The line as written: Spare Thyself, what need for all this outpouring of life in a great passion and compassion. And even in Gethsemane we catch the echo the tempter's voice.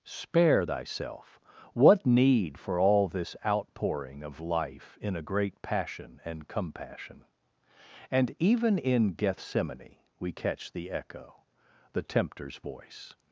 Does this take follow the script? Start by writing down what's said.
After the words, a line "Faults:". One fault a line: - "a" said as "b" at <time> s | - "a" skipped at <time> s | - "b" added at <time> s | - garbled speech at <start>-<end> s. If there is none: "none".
Spare Thyself, what need for all this outpouring of life in a great passion and compassion. And even in Gethsemane we catch the echo the tempter's voice.
Faults:
none